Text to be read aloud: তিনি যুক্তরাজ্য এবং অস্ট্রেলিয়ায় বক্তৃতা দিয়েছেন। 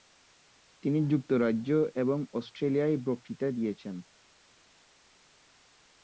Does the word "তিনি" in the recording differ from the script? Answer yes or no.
no